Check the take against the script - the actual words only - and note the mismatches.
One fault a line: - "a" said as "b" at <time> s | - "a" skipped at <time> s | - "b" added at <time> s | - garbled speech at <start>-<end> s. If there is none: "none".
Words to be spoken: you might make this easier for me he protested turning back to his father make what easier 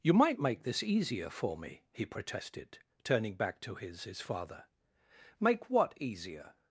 - "his" added at 4.0 s